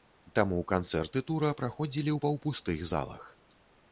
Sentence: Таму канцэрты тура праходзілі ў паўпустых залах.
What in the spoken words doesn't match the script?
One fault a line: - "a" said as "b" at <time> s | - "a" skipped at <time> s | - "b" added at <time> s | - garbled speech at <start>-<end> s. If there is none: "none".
none